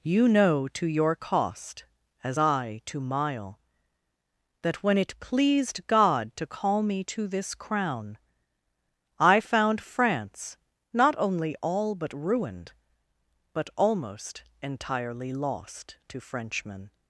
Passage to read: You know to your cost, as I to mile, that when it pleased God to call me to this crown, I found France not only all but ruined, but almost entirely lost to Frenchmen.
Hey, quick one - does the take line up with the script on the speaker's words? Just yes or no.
yes